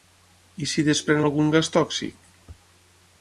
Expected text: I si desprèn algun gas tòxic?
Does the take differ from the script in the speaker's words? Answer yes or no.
no